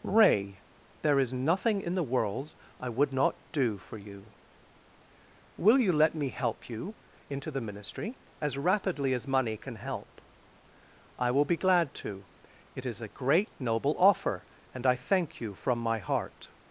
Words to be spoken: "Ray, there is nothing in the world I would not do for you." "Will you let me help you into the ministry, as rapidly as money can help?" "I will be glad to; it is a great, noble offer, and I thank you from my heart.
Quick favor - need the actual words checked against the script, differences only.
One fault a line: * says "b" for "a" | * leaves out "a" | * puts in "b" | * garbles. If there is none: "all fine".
all fine